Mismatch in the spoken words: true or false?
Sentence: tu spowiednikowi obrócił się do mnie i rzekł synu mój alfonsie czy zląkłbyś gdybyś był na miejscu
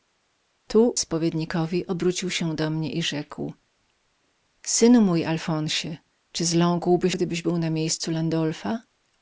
false